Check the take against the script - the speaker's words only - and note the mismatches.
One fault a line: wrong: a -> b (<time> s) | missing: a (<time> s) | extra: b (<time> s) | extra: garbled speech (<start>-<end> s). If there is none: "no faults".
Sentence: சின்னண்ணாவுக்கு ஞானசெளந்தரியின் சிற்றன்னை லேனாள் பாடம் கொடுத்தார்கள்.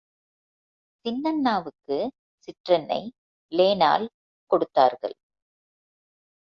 missing: ஞானசெளந்தரியின் (2.0 s)
missing: பாடம் (4.1 s)